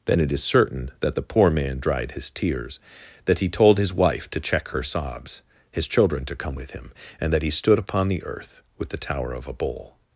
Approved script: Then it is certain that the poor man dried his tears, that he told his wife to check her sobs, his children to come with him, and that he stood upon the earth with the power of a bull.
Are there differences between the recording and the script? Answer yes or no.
yes